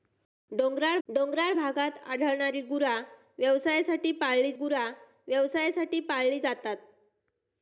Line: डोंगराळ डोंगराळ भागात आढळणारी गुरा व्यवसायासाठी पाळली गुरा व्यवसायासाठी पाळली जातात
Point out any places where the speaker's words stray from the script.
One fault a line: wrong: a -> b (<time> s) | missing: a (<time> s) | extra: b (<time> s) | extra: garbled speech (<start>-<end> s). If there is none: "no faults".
no faults